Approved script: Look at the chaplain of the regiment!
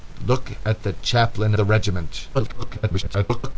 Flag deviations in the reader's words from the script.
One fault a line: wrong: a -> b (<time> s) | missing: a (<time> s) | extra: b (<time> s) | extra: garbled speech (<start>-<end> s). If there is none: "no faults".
missing: of (1.5 s)
extra: garbled speech (2.3-3.6 s)